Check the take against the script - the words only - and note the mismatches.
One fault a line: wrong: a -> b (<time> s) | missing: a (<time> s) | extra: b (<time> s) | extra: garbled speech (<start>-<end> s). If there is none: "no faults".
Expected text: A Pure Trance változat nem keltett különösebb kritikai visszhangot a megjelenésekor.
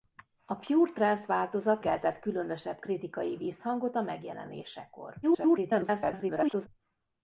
missing: nem (1.8 s)
extra: garbled speech (5.2-6.7 s)